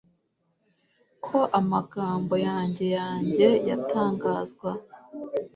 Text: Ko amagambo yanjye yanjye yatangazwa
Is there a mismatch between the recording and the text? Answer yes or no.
no